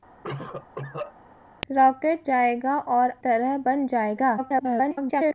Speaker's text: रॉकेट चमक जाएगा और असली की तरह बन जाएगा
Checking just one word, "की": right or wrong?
wrong